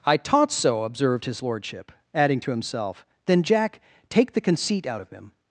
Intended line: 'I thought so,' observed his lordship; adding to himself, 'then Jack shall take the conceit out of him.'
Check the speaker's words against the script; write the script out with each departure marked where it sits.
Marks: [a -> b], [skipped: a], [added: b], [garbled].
'I [thought -> taught] so,' observed his lordship; adding to himself, 'then Jack [skipped: shall] take the conceit out of him.'